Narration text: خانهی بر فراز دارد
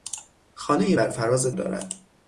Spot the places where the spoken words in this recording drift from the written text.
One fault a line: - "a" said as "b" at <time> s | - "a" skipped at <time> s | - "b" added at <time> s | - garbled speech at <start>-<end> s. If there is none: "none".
none